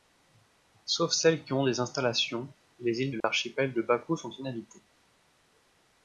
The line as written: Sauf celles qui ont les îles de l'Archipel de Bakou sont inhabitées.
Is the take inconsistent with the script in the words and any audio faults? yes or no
yes